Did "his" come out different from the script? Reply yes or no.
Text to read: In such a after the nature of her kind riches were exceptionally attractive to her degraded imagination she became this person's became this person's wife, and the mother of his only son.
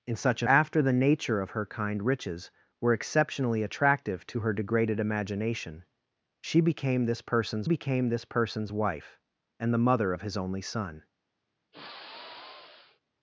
no